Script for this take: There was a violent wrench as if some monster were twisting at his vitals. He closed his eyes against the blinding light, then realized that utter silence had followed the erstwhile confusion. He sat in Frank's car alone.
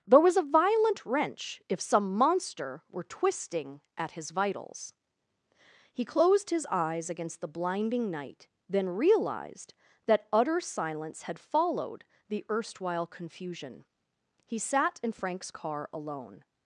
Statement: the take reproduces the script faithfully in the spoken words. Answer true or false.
false